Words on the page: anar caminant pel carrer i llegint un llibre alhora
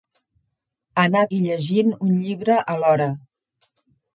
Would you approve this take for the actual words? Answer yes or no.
no